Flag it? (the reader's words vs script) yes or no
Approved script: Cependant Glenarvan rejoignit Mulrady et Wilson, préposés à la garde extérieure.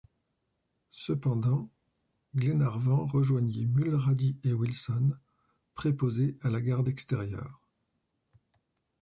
no